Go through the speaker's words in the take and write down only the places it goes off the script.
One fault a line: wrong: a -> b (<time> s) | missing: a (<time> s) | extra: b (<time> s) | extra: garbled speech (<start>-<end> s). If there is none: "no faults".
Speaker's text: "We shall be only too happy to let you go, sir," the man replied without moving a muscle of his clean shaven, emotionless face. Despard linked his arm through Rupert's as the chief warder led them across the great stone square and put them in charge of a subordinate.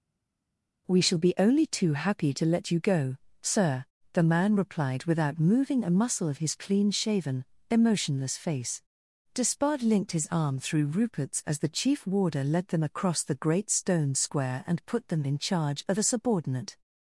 no faults